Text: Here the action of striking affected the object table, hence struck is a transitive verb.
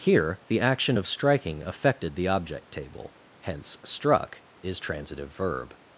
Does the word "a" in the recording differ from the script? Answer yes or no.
yes